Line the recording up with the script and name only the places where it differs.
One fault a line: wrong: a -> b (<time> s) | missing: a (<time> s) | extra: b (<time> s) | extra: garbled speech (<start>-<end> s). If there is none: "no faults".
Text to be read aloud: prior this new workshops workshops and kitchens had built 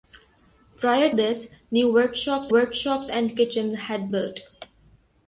no faults